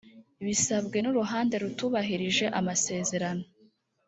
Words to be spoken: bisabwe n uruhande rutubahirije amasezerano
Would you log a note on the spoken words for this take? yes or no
no